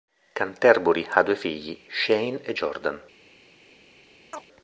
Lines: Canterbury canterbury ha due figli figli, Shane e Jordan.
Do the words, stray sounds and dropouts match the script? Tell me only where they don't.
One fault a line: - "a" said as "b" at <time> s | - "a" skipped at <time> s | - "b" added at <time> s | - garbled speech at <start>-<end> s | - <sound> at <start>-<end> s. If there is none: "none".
- "canterbury" skipped at 1.1 s
- "figli" skipped at 1.8 s
- chirp at 4.3-4.5 s